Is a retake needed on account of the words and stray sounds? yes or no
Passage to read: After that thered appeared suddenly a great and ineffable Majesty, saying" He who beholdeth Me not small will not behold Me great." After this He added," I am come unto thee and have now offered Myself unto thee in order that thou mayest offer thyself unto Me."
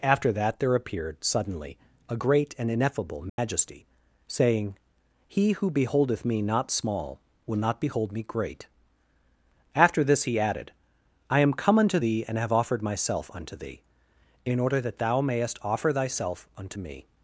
yes